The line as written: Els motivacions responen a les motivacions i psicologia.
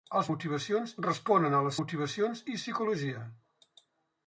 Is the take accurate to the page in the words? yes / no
yes